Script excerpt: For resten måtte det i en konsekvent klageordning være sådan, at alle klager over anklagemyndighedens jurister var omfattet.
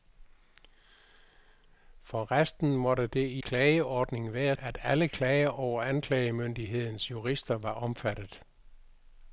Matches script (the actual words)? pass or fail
fail